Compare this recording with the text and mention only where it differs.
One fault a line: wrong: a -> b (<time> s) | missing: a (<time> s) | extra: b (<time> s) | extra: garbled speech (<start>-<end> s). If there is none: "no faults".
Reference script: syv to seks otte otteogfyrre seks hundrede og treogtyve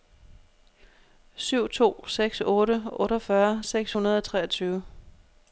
no faults